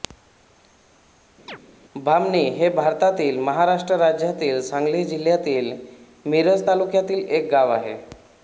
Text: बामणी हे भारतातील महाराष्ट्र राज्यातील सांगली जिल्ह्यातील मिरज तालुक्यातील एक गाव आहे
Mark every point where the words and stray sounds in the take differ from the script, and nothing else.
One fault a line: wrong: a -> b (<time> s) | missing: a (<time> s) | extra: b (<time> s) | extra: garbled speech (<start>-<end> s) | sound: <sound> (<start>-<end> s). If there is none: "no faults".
sound: chirp (1.5-1.6 s)